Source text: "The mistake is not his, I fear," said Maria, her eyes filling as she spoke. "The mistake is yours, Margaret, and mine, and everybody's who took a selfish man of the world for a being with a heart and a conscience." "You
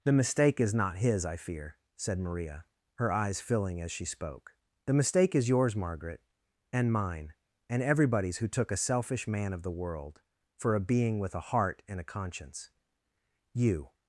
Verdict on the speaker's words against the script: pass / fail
pass